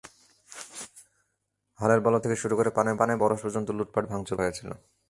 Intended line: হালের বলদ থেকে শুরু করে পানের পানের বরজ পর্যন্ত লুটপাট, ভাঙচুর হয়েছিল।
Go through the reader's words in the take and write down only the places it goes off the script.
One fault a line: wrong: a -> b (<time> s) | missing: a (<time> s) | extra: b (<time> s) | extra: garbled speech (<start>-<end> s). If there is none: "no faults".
no faults